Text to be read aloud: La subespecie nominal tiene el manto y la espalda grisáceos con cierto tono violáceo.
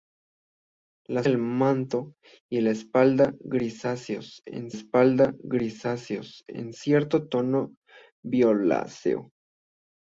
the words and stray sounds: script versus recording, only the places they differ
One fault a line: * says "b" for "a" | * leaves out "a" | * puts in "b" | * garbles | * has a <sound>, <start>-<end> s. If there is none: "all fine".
* leaves out "subespecie nominal tiene"
* puts in "espalda grisáceos con"